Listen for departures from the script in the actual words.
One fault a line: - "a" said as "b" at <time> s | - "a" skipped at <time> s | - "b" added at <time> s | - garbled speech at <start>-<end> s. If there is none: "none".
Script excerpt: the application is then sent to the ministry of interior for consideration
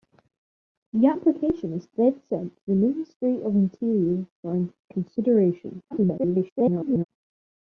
- garbled speech at 5.9-7.0 s